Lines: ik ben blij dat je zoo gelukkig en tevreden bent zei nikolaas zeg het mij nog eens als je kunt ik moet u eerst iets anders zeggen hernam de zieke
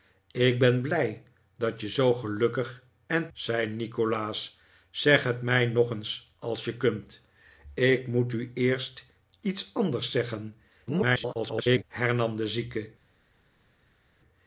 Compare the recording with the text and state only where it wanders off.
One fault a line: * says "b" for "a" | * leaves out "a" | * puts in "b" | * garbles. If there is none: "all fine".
* leaves out "tevreden bent"
* garbles